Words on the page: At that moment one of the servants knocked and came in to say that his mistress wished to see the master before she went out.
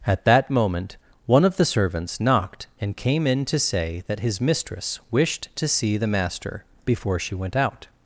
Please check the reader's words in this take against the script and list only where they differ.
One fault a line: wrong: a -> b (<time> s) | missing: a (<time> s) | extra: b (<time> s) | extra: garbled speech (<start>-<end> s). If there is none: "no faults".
no faults